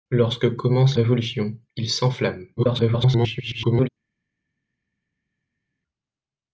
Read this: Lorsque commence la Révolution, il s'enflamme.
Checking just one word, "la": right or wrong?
wrong